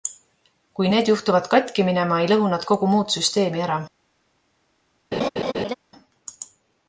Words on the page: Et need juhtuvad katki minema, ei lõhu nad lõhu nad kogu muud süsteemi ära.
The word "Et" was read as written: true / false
false